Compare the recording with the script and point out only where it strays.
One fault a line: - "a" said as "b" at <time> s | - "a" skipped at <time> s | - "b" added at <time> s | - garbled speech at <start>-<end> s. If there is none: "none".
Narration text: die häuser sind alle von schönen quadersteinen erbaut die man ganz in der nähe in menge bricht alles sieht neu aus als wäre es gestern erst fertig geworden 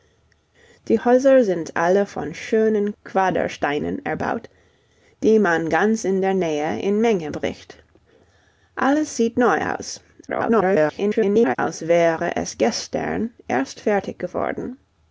- garbled speech at 10.3-11.6 s